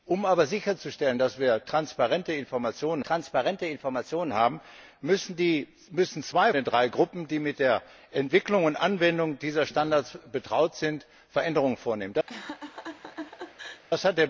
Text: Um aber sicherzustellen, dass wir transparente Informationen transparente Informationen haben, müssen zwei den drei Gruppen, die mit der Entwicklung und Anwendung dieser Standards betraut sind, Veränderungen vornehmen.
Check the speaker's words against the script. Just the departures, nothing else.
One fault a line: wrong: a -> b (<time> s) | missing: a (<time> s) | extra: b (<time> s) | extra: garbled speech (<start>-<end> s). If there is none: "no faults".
no faults